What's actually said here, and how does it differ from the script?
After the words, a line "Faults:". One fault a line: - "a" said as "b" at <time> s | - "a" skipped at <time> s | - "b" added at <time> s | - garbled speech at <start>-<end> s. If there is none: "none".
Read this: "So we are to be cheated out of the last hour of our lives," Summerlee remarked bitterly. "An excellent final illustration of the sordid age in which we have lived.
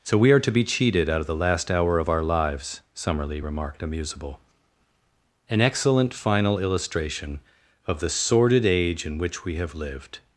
"So we are to be cheated out of the last hour of our lives," Summerlee remarked amusable. "An excellent final illustration of the sordid age in which we have lived.
Faults:
- "bitterly" said as "amusable" at 3.8 s